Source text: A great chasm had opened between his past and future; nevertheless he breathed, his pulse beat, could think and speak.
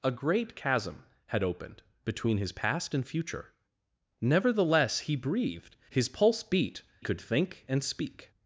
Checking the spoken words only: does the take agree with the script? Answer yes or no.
yes